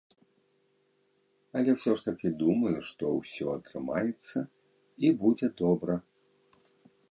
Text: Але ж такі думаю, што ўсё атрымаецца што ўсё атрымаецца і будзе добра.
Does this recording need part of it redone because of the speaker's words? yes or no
yes